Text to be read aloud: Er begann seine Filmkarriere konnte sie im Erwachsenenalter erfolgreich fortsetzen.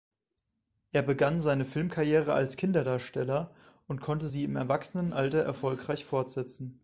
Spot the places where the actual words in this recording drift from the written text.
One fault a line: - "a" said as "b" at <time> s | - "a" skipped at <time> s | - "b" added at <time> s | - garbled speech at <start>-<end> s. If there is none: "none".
- "als Kinderdarsteller und" added at 2.3 s